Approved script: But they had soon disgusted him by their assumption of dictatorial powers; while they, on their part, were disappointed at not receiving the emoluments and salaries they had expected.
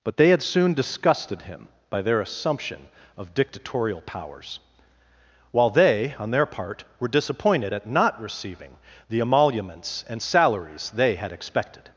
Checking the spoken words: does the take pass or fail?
pass